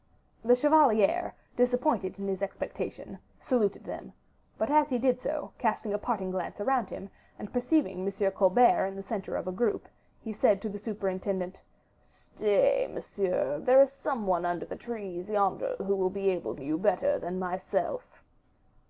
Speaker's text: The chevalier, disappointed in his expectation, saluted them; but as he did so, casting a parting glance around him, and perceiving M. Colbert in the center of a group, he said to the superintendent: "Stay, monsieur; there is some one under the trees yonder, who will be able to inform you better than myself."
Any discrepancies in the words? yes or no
yes